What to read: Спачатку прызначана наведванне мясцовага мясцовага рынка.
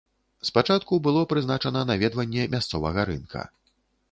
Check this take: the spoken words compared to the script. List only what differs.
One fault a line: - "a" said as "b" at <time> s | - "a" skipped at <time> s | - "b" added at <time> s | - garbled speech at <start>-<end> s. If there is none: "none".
- "было" added at 1.1 s
- "мясцовага" skipped at 3.0 s